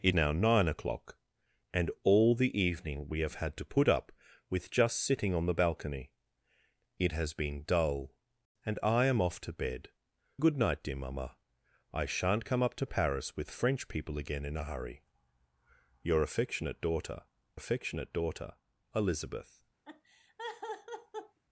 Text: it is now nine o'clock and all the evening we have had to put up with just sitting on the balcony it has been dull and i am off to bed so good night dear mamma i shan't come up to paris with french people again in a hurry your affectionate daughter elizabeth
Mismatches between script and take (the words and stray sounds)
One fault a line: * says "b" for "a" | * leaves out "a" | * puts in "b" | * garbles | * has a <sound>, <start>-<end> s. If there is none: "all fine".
* leaves out "is"
* leaves out "so"
* puts in "affectionate daughter"
* has a laugh, 19.8-21.4 s